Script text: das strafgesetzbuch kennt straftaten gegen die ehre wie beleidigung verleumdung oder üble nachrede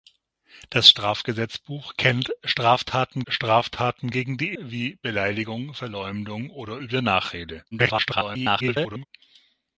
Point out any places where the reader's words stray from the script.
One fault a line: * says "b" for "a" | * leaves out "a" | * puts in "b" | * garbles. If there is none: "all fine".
* puts in "straftaten"
* leaves out "ehre"
* garbles